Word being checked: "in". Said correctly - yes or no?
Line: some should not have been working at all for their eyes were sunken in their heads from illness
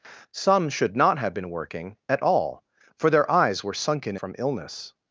no